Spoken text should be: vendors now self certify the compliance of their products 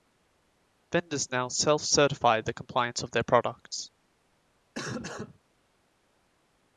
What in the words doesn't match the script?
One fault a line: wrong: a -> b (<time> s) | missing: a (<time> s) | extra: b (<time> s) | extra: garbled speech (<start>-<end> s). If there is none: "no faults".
no faults